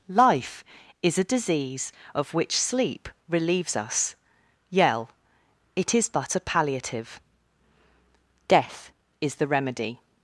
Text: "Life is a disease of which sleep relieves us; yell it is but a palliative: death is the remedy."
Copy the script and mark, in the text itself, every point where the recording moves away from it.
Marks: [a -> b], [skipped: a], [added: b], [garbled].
"Life is a disease of which sleep relieves us; yell it is but a palliative: death is the remedy."